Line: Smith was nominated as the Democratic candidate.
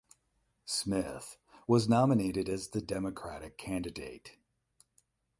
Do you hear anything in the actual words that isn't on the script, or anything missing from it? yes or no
no